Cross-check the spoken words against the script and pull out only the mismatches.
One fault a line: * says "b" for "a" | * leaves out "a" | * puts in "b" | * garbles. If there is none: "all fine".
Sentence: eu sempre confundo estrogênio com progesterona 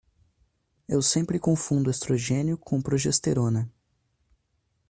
all fine